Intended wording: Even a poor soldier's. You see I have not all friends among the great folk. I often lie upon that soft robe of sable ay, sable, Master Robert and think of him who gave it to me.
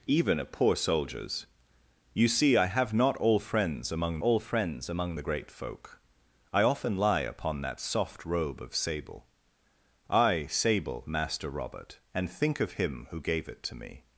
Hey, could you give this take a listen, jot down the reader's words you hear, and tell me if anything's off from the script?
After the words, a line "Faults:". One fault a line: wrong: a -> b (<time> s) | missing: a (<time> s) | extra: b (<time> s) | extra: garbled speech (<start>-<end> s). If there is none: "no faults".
Even a poor soldier's. You see I have not all friends among all friends among the great folk. I often lie upon that soft robe of sable ay, sable, Master Robert and think of him who gave it to me.
Faults:
extra: all friends among (4.2 s)